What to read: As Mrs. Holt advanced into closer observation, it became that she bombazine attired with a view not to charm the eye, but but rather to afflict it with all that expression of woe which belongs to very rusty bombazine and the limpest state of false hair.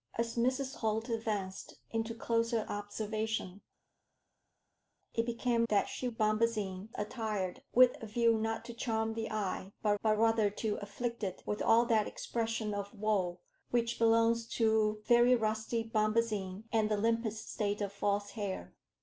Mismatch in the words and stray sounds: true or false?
false